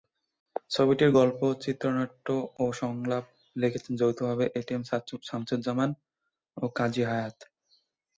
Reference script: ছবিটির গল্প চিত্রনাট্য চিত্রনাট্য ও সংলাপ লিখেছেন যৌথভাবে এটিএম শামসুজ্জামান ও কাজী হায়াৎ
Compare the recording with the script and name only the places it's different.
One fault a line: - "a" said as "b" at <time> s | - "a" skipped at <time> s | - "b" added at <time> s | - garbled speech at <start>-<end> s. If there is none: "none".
- "চিত্রনাট্য" skipped at 2.3 s